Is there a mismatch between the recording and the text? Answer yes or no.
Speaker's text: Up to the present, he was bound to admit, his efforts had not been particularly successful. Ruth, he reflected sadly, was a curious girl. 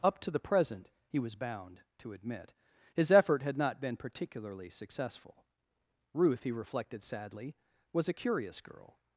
yes